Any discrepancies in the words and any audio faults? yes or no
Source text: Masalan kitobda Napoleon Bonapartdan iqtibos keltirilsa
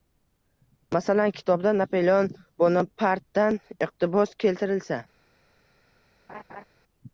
yes